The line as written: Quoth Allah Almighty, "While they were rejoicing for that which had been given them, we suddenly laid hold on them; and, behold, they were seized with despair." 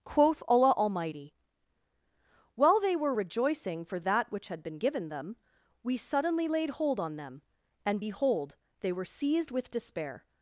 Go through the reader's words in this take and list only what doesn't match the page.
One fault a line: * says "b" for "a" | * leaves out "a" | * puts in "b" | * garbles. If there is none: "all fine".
all fine